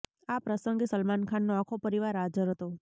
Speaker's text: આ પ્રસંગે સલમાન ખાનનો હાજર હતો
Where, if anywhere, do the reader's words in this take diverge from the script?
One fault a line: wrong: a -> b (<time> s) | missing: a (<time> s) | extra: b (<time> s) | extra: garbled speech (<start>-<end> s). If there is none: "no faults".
extra: આખો પરિવાર (1.6 s)